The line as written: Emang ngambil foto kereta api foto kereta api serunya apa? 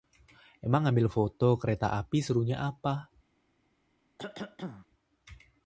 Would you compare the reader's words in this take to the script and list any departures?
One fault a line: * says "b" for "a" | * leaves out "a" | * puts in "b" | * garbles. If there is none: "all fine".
* leaves out "foto kereta api"